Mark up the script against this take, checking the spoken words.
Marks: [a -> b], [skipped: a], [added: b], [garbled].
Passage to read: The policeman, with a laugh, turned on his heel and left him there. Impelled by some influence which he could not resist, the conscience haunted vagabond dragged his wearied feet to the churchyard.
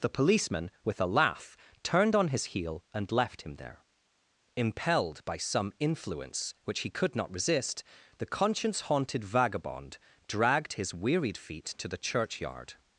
The policeman, with a laugh, turned on his heel and left him there. Impelled by some influence which he could not resist, the conscience haunted vagabond dragged his wearied feet to the churchyard.